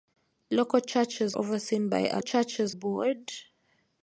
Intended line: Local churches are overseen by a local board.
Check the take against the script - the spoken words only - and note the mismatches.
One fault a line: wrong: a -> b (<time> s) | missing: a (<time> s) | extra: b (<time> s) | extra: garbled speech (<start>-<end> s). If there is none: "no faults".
missing: are (1.4 s)
wrong: local -> churches (2.2 s)